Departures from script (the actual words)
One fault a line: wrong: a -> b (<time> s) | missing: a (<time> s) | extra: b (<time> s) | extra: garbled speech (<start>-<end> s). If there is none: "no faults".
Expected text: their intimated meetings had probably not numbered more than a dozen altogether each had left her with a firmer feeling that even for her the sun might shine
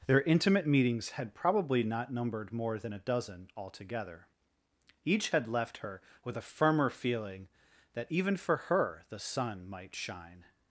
wrong: intimated -> intimate (0.2 s)